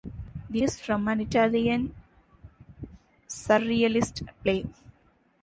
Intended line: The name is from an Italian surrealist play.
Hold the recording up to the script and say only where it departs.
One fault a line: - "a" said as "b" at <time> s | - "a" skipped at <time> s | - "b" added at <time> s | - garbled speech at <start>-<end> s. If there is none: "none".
- "name" skipped at 0.6 s